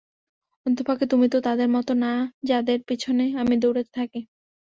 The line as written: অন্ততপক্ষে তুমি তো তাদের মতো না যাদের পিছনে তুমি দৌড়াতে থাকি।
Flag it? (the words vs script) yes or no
yes